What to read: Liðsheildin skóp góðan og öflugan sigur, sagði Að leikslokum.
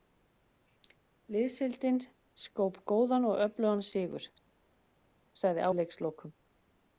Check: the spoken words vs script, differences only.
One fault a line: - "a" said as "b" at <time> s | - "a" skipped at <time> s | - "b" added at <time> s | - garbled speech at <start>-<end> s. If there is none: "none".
none